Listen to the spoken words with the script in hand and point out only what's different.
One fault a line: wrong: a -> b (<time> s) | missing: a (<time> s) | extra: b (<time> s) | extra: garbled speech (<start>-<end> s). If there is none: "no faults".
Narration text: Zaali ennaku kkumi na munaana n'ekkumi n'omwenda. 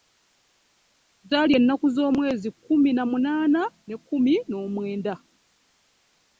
extra: z'omwezi (1.9 s)